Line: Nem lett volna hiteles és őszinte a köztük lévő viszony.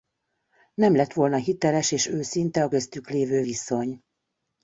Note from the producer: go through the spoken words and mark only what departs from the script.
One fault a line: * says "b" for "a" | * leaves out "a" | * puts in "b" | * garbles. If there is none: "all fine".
all fine